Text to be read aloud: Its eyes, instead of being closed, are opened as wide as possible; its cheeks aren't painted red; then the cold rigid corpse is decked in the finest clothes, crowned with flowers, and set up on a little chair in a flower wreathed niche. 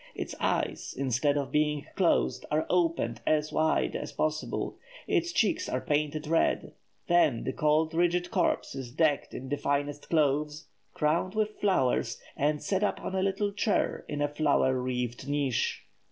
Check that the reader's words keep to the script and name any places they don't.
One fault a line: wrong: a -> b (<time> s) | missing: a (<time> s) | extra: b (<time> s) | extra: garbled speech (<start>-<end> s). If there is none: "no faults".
wrong: aren't -> are (5.7 s)